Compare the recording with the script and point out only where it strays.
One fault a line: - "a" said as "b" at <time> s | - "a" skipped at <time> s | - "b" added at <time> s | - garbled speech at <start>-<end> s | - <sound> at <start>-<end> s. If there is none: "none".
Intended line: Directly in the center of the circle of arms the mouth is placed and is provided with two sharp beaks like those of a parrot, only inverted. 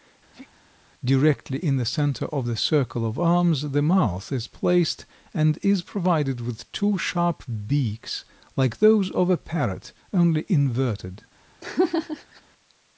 - sneeze at 0.3-0.5 s
- laugh at 11.6-12.4 s